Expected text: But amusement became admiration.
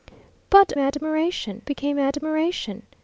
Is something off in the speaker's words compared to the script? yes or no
yes